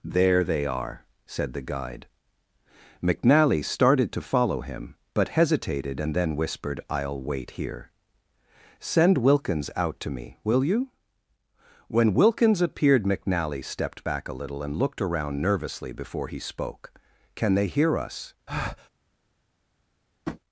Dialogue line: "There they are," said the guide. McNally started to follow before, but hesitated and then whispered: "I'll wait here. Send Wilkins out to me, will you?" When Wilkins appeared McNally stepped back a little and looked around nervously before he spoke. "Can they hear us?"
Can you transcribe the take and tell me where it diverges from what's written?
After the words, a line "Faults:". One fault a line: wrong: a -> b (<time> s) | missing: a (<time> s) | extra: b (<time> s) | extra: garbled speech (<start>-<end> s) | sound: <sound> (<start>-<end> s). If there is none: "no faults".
"There they are," said the guide. McNally started to follow him, but hesitated and then whispered: "I'll wait here. Send Wilkins out to me, will you?" When Wilkins appeared McNally stepped back a little and looked around nervously before he spoke. "Can they hear us?"
Faults:
wrong: before -> him (4.6 s)
sound: breath (18.5-18.9 s)
sound: tap (20.3-20.4 s)